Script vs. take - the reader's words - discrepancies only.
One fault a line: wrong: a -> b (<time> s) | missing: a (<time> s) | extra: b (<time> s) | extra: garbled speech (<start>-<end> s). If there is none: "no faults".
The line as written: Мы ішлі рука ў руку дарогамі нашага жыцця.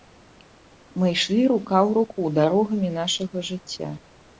no faults